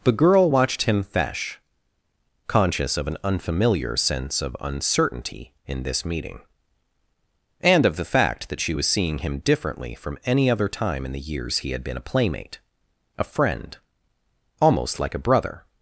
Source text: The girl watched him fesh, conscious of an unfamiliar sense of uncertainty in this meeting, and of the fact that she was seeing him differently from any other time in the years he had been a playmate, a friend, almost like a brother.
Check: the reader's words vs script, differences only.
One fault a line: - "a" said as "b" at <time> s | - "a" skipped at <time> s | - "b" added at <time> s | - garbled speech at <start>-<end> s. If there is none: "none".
none